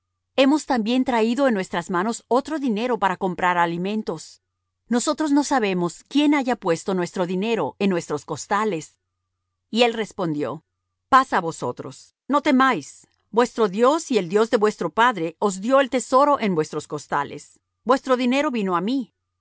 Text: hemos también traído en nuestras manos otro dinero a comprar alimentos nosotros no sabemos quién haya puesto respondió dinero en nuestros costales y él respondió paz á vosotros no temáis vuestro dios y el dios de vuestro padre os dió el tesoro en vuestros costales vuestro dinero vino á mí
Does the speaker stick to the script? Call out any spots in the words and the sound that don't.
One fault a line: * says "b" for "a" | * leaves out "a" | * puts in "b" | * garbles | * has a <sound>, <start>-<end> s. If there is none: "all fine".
* says "para" for "a"
* says "nuestro" for "respondió"